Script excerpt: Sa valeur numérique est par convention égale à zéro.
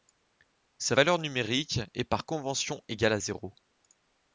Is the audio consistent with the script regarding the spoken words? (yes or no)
yes